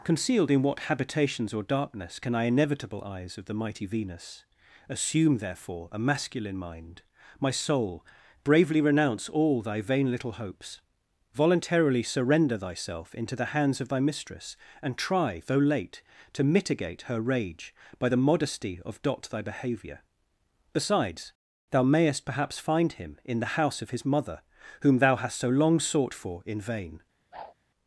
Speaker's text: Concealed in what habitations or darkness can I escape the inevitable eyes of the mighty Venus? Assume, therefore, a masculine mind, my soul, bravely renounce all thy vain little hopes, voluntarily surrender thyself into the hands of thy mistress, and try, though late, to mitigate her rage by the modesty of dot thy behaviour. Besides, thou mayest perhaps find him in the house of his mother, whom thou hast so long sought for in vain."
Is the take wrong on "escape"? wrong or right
wrong